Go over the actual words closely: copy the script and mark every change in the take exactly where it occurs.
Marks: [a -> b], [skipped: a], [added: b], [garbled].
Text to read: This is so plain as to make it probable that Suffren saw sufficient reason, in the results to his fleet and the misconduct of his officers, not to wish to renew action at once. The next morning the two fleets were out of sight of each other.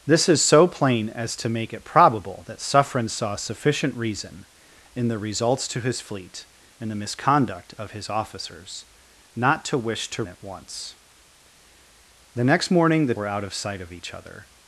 This is so plain as to make it probable that Suffren saw sufficient reason, in the results to his fleet and the misconduct of his officers, not to wish to [skipped: renew action] at once. The next morning the [skipped: two fleets] were out of sight of each other.